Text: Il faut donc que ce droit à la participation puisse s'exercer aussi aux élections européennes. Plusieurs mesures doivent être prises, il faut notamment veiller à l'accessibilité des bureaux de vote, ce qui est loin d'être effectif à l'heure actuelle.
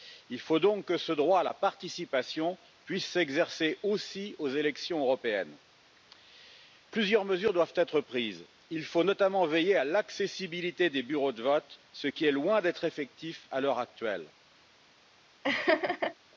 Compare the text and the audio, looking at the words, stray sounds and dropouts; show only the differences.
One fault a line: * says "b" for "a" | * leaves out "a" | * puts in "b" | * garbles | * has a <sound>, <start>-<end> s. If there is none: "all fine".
* has a laugh, 15.4-16.1 s